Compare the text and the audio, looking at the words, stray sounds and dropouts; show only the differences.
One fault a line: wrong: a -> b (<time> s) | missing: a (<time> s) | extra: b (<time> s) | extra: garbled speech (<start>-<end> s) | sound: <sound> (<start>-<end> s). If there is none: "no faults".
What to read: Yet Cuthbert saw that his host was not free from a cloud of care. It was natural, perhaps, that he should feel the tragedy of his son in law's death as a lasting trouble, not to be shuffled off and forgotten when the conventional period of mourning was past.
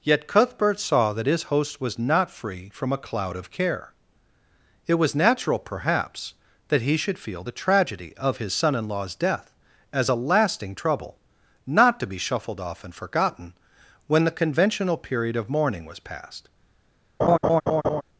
sound: laugh (17.2-18.0 s)